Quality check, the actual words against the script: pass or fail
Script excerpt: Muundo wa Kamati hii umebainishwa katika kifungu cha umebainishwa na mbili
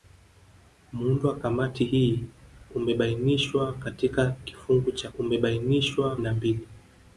pass